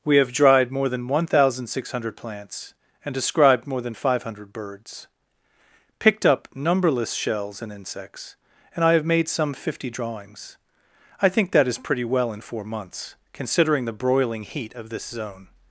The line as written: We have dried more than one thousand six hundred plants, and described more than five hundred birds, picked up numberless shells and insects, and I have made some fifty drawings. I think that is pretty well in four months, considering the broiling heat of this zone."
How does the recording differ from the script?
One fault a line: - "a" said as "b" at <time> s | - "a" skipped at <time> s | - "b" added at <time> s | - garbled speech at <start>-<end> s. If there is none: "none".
none